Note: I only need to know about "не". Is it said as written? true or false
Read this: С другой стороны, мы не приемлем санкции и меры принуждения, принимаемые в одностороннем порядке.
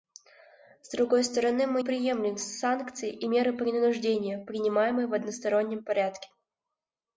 false